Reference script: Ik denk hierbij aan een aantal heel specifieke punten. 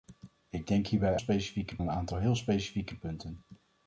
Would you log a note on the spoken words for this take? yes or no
yes